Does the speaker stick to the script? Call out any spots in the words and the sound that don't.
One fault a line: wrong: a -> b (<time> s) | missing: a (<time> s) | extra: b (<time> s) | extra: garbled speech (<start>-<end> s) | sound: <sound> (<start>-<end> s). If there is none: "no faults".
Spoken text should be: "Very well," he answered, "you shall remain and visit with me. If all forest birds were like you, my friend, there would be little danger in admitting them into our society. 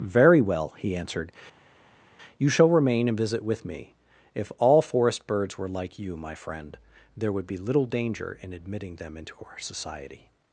no faults